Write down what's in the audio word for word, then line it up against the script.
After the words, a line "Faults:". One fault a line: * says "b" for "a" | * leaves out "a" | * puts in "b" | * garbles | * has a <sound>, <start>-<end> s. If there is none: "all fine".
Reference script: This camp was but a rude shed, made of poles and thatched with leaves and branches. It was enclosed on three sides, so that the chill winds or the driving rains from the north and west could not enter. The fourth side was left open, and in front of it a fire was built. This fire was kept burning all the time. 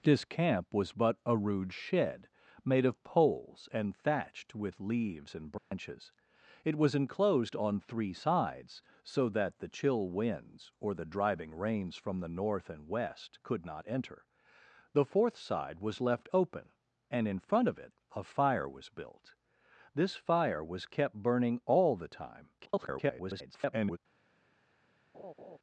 This camp was but a rude shed, made of poles and thatched with leaves and branches. It was enclosed on three sides, so that the chill winds or the driving rains from the north and west could not enter. The fourth side was left open, and in front of it a fire was built. This fire was kept burning all the time. [garbled]
Faults:
* has a dropout, 5.6-5.7 s
* garbles
* has a laugh, 25.1-25.6 s